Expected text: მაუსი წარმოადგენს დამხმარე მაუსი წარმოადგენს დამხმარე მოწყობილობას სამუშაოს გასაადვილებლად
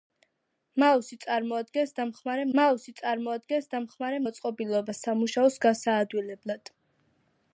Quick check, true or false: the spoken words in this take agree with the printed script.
true